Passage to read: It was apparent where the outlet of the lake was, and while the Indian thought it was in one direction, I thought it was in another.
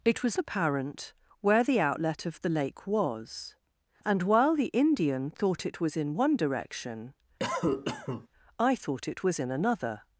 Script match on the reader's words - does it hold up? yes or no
yes